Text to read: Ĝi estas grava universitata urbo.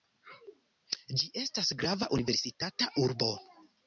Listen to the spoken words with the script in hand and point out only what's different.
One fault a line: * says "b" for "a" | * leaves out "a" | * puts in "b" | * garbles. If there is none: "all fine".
all fine